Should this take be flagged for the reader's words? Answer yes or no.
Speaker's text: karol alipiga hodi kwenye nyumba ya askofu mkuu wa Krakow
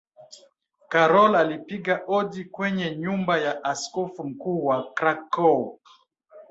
no